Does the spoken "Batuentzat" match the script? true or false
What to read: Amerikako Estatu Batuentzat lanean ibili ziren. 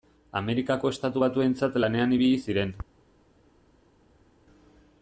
true